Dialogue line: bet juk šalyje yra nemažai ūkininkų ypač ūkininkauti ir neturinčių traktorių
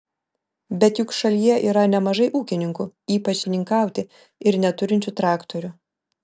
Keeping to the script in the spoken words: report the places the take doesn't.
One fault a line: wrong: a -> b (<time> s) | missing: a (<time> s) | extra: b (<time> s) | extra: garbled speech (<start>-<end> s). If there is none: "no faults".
no faults